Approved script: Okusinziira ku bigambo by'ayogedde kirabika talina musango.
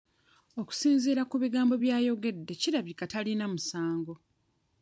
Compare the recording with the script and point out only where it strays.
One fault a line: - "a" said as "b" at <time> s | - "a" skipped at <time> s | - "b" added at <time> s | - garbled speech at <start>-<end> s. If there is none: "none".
none